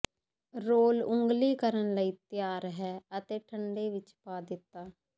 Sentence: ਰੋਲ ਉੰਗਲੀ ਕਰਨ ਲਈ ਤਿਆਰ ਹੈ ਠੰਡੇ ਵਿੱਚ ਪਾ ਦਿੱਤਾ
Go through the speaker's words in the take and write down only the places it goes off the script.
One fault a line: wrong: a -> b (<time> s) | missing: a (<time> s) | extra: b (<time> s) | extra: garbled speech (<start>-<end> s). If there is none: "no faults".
extra: ਅਤੇ (3.2 s)